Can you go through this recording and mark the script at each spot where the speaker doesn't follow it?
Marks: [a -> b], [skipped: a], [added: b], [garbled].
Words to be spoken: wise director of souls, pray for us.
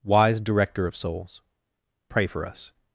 wise director of souls, pray for us.